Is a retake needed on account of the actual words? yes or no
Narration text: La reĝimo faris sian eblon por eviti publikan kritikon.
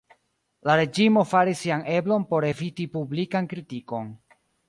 no